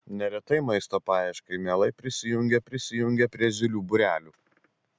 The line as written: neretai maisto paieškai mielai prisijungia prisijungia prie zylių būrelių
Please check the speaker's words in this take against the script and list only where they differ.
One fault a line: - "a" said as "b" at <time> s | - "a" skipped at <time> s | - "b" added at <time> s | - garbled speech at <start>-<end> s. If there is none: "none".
none